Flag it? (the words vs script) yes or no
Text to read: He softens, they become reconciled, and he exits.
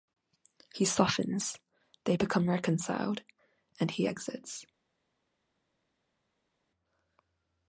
no